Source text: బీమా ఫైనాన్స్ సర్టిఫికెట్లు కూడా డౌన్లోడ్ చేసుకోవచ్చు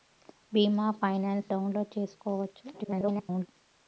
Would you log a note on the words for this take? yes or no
yes